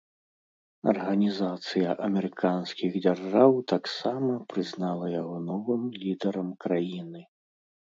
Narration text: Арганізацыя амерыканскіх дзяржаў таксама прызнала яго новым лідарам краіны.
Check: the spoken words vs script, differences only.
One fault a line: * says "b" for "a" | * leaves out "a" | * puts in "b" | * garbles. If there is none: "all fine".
all fine